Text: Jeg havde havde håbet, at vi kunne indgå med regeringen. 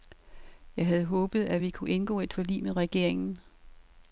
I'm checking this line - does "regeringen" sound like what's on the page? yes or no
yes